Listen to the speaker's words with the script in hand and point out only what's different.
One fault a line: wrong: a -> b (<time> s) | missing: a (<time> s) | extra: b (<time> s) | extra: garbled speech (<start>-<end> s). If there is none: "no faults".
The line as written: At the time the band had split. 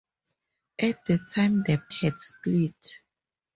missing: band (1.8 s)